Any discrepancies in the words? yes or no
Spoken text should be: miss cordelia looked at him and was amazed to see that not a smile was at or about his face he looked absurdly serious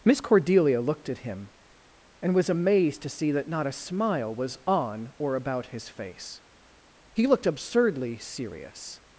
yes